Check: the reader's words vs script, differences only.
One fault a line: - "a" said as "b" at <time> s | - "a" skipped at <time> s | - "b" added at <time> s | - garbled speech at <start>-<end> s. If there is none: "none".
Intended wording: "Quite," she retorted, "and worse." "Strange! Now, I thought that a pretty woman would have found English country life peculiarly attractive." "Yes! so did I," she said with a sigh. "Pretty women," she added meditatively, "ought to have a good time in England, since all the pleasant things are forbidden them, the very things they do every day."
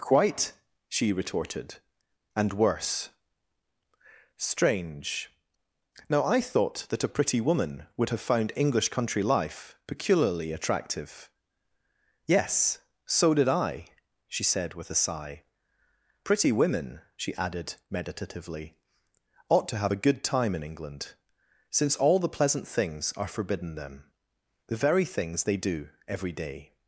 none